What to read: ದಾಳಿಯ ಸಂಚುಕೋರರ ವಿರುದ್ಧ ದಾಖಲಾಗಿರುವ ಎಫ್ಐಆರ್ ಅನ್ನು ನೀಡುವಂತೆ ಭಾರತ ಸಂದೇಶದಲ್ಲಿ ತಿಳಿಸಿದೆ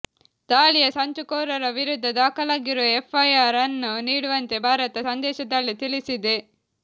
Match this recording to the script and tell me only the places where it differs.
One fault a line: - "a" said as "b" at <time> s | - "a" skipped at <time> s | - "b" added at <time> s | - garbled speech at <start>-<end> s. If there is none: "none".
none